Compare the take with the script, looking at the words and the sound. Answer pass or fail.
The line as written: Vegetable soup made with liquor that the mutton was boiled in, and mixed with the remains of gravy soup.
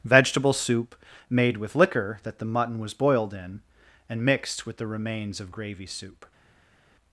pass